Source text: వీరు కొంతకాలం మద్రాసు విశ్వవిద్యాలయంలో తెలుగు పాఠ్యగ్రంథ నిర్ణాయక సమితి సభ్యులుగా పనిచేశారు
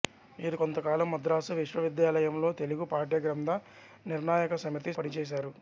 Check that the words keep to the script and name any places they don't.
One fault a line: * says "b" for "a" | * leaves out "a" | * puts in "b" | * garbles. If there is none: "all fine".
* leaves out "సభ్యులుగా"